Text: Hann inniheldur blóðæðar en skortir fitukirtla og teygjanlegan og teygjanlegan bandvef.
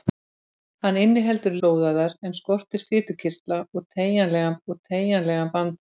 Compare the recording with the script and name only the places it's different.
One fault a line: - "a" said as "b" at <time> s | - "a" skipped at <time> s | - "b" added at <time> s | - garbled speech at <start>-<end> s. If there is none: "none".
none